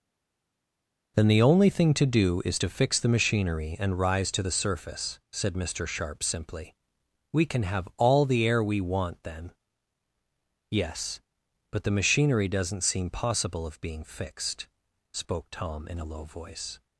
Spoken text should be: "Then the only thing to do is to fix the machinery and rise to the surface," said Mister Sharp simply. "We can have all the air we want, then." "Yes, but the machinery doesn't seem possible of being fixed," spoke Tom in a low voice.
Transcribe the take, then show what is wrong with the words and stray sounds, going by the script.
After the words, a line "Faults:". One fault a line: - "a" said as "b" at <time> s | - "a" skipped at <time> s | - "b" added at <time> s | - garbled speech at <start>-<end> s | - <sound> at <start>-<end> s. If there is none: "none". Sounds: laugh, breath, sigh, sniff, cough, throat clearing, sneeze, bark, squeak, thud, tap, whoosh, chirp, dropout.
"Then the only thing to do is to fix the machinery and rise to the surface," said Mister Sharp simply. "We can have all the air we want, then." "Yes, but the machinery doesn't seem possible of being fixed," spoke Tom in a low voice.
Faults:
none